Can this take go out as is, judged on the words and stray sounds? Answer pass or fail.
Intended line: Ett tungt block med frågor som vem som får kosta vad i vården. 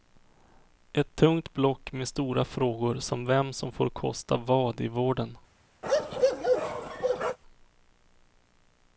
fail